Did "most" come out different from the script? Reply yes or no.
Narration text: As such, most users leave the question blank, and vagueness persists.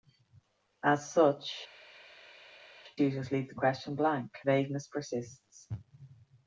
yes